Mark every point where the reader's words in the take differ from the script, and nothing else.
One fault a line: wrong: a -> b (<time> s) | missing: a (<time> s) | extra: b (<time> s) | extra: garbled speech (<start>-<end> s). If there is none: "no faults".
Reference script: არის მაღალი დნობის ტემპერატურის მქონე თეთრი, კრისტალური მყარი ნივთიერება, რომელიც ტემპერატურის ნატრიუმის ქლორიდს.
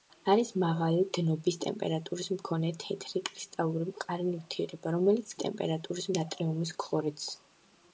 no faults